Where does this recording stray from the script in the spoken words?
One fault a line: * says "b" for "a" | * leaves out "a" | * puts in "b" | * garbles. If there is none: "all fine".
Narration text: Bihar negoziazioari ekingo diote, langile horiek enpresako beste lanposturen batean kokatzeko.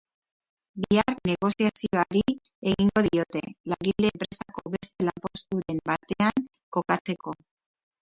* leaves out "horiek"